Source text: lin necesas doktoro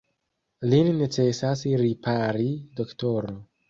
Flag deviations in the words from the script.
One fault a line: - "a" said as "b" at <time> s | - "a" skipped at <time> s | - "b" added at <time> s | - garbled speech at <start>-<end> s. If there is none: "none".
- "ripari" added at 1.9 s